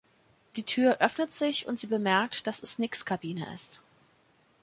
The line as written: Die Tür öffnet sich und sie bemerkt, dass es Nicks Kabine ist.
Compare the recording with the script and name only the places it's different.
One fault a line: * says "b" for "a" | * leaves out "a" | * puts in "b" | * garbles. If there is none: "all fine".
all fine